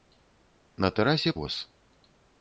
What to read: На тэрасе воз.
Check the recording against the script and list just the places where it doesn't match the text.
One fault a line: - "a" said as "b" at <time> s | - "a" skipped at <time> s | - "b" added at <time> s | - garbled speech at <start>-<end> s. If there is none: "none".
none